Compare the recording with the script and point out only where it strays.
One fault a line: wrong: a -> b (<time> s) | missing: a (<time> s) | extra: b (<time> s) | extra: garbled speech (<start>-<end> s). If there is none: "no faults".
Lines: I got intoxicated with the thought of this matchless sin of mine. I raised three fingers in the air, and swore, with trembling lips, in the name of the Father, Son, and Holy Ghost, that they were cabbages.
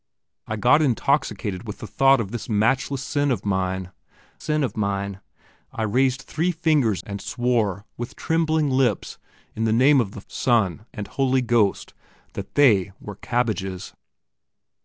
extra: sin of mine (4.4 s)
missing: in the air (7.0 s)
missing: Father (10.2 s)